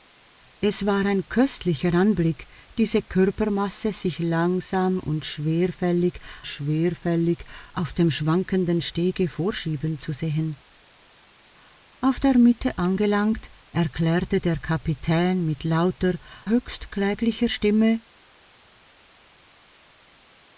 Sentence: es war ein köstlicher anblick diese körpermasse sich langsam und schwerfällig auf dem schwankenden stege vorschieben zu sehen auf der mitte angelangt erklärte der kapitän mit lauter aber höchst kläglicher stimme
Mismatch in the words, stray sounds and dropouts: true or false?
true